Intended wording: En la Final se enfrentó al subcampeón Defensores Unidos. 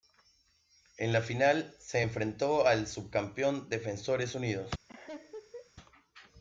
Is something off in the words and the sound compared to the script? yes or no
yes